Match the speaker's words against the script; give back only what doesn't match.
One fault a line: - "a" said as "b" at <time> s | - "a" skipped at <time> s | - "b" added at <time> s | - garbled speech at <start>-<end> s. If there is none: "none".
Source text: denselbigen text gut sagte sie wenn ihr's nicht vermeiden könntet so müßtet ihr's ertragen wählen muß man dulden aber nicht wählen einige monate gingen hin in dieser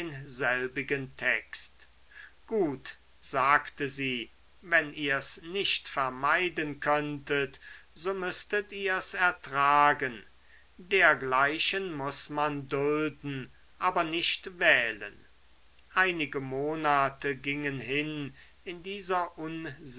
- "wählen" said as "dergleichen" at 10.8 s